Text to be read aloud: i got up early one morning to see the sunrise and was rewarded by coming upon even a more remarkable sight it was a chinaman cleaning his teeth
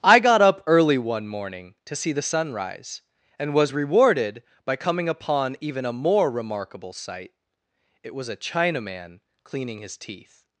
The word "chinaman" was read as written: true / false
true